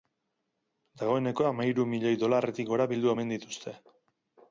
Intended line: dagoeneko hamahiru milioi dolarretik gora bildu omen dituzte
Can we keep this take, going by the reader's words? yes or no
yes